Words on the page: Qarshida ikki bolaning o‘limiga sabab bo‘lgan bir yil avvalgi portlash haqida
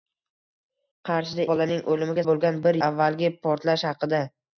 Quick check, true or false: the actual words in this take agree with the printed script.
false